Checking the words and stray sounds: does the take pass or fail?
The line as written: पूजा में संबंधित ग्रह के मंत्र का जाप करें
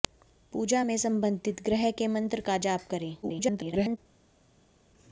fail